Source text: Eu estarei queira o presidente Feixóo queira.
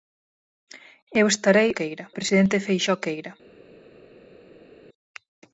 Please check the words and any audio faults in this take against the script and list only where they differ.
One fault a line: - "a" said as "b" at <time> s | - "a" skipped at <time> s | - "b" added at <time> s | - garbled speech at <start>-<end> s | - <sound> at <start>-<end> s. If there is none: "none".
none